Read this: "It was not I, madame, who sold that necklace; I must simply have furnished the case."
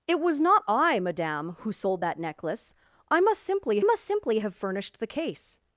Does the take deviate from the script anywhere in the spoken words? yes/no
yes